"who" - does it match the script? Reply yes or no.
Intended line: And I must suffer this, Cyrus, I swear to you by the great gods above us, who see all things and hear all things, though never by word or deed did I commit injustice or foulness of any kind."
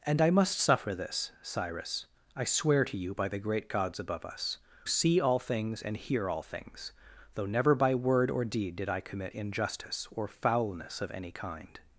no